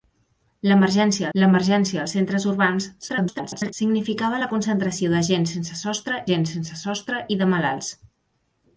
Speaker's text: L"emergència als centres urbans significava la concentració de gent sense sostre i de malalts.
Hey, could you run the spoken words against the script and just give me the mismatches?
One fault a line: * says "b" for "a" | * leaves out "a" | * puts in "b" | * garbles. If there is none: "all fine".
* puts in "l"emergència"
* garbles
* puts in "gent sense sostre"